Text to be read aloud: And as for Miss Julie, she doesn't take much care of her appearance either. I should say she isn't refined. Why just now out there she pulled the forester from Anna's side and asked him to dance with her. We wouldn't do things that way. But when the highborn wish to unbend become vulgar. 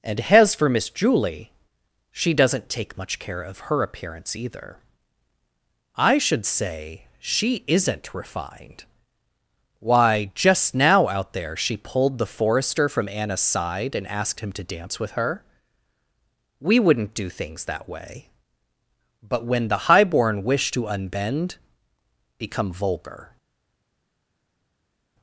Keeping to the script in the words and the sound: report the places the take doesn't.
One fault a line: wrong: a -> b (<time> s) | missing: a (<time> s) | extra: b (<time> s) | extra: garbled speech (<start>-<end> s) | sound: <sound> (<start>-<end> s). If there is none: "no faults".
no faults